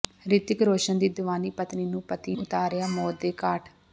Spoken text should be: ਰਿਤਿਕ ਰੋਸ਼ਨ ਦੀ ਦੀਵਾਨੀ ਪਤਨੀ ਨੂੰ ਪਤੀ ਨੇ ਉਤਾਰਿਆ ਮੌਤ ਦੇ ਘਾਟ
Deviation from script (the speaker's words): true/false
true